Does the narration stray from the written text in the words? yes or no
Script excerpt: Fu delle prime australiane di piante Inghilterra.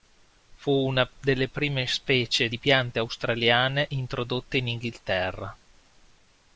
yes